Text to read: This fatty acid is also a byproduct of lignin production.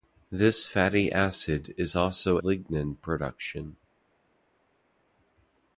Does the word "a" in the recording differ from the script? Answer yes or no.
yes